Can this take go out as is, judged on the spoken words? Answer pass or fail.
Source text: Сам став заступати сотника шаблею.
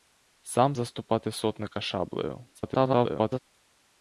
fail